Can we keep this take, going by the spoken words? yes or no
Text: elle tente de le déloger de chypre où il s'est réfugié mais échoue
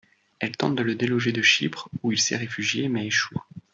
yes